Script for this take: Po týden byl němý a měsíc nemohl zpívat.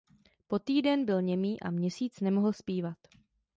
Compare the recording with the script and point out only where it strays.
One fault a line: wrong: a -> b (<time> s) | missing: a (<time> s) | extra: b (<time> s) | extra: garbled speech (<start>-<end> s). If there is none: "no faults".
no faults